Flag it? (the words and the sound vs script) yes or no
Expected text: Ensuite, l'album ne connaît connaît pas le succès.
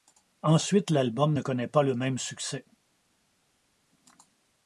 yes